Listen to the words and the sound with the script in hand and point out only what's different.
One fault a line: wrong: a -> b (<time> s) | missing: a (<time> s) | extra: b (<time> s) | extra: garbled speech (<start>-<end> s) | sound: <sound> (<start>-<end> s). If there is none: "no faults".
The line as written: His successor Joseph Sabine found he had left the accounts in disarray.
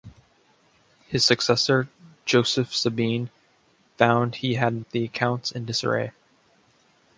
missing: left (4.8 s)